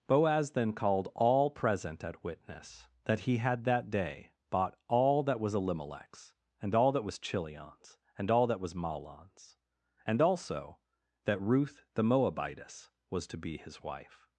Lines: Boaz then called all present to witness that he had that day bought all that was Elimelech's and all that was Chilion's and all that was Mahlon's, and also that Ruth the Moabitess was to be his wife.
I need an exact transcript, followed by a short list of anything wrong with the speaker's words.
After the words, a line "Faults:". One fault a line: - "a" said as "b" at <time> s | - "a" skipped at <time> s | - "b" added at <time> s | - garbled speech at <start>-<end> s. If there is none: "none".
Boaz then called all present at witness that he had that day bought all that was Elimelech's and all that was Chilion's and all that was Mahlon's, and also that Ruth the Moabitess was to be his wife.
Faults:
- "to" said as "at" at 2.0 s